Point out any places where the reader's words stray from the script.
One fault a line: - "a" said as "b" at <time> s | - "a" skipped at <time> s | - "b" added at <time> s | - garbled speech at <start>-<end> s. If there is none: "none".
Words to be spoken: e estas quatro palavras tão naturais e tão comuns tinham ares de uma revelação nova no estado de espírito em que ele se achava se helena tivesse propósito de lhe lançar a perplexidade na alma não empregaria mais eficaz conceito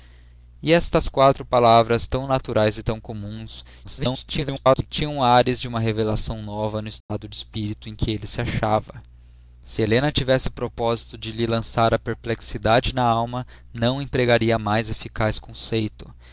- garbled speech at 3.8-4.9 s